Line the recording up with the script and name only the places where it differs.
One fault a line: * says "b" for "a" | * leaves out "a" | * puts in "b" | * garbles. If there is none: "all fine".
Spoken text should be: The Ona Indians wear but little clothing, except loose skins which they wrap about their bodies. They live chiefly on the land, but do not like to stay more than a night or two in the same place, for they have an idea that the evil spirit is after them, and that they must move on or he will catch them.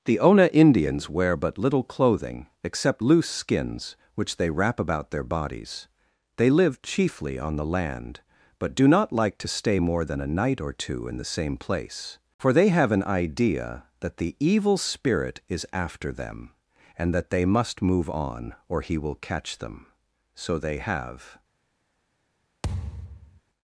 * puts in "So they have"